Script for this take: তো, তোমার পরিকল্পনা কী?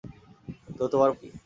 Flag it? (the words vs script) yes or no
yes